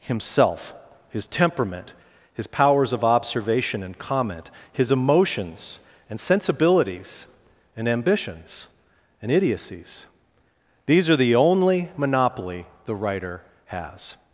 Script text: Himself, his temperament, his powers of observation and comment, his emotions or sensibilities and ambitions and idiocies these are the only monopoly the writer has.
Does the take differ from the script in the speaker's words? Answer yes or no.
yes